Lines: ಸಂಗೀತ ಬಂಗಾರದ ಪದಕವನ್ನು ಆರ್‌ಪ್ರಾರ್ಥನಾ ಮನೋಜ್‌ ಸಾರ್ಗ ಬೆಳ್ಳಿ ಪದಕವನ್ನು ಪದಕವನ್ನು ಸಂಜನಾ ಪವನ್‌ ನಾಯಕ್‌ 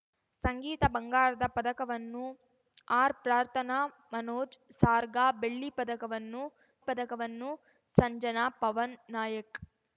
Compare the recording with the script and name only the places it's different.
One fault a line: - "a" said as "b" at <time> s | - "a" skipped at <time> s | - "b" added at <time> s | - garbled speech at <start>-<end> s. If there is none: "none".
none